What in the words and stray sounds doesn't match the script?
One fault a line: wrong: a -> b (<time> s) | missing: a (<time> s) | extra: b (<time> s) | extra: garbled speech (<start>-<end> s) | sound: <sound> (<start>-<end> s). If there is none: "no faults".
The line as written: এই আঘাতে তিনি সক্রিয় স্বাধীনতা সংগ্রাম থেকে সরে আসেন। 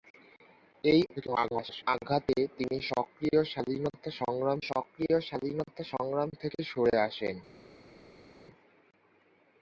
extra: garbled speech (1.2-1.8 s)
extra: সক্রিয় স্বাধীনতা সংগ্রাম (4.7 s)